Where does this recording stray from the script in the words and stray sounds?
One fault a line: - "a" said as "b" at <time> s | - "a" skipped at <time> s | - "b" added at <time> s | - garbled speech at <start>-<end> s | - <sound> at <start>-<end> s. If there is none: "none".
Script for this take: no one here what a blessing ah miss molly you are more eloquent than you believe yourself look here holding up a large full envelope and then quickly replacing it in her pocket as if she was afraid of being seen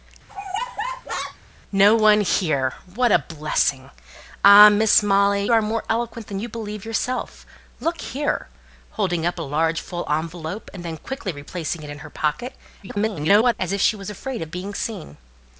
- laugh at 0.3-1.4 s
- "you" skipped at 5.4 s
- garbled speech at 12.8-13.5 s